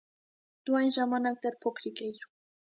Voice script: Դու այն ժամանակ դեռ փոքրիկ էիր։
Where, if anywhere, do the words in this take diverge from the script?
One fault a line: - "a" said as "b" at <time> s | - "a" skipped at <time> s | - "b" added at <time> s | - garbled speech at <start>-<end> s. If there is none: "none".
none